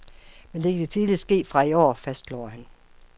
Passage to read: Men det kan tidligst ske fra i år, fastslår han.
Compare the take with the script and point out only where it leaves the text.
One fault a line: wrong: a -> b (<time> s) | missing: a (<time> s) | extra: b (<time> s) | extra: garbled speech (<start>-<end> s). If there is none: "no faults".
no faults